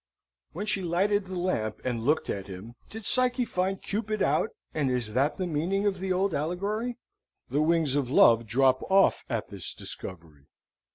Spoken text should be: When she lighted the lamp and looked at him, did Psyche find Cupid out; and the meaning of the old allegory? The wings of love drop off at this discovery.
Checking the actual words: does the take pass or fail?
fail